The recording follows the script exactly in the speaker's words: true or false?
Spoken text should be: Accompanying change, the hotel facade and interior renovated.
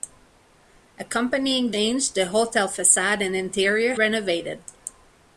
true